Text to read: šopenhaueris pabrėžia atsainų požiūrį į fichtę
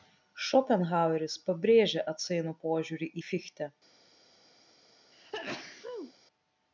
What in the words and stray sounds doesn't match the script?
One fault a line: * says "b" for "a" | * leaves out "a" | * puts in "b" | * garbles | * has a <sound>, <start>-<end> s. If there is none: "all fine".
* has a sneeze, 5.1-6.1 s